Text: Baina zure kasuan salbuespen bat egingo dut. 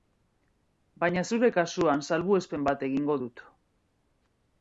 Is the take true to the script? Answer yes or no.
yes